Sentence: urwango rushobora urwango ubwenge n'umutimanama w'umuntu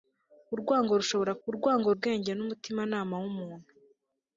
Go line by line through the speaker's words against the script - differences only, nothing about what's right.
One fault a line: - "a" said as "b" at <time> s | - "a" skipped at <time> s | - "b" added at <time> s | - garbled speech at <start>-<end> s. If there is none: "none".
none